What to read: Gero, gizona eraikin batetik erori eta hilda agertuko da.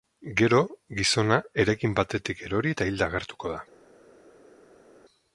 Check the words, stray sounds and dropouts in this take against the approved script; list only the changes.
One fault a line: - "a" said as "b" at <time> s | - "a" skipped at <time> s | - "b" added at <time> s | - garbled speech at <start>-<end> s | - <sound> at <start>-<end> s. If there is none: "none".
none